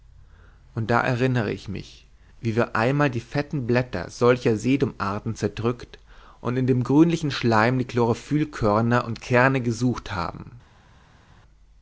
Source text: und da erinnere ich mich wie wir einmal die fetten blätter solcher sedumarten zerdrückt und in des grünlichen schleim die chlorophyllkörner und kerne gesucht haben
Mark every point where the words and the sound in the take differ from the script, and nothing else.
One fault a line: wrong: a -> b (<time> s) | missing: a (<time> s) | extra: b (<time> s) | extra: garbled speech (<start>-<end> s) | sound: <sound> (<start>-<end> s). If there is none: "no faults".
wrong: des -> dem (6.7 s)